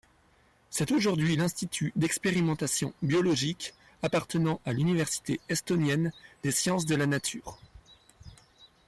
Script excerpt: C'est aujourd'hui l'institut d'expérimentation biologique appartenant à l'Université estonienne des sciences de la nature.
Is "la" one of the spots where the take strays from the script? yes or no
no